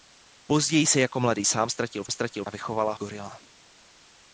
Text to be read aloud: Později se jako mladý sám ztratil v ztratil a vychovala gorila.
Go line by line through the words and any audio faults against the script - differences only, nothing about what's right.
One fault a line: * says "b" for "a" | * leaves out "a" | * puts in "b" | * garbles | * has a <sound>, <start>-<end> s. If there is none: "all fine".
all fine